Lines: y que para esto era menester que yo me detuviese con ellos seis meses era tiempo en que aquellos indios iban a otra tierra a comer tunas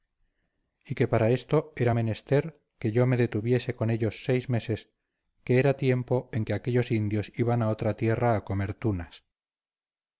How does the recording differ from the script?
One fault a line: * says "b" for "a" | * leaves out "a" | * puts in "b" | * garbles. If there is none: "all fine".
* puts in "que"